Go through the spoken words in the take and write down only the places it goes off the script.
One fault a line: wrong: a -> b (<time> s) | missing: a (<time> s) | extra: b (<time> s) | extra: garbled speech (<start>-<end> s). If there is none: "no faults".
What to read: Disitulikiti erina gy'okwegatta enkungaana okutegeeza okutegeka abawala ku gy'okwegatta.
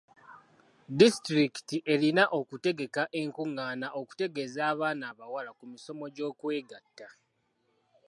wrong: gy'okwegatta -> okutegeka (2.4 s)
wrong: okutegeka -> abaana (4.7 s)
extra: misomo (5.7 s)